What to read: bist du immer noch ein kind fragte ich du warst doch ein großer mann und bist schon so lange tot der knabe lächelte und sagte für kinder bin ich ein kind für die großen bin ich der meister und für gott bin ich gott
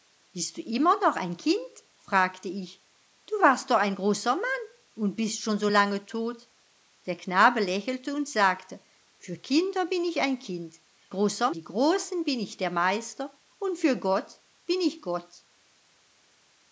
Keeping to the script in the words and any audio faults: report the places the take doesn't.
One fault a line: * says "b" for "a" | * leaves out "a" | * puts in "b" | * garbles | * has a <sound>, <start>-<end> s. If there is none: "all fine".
* says "großer" for "für"